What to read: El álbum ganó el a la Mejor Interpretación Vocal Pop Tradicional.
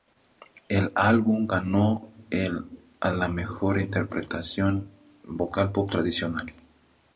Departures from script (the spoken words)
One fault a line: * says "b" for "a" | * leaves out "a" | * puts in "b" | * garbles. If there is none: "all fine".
all fine